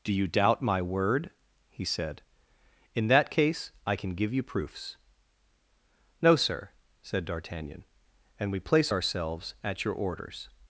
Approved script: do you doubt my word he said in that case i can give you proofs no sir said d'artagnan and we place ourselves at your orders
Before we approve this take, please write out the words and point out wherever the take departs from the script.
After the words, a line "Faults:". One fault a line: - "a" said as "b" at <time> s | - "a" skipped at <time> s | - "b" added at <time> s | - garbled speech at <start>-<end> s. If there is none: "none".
do you doubt my word he said in that case i can give you proofs no sir said d'artagnan and we place ourselves at your orders
Faults:
none